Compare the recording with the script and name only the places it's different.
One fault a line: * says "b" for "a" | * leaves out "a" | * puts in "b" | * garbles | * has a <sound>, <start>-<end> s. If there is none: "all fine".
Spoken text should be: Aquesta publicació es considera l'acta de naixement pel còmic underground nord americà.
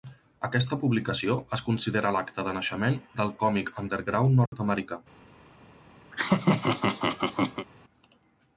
* says "del" for "pel"
* has a dropout, 4.5-4.5 s
* has a laugh, 6.1-7.7 s